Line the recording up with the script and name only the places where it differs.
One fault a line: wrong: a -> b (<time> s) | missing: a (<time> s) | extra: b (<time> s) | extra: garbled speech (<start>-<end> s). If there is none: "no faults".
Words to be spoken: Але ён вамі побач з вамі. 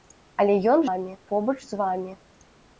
no faults